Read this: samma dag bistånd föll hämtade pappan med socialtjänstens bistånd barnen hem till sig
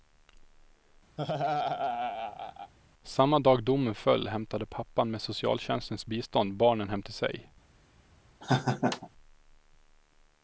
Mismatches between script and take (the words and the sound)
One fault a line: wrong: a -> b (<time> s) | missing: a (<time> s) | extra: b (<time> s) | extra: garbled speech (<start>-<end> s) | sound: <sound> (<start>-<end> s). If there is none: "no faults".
sound: laugh (1.2-2.7 s)
wrong: bistånd -> domen (3.6 s)
sound: laugh (8.4-9.1 s)